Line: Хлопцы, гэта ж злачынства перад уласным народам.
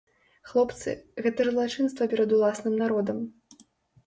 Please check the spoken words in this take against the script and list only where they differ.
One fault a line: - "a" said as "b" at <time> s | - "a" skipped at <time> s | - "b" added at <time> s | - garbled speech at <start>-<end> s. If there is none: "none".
none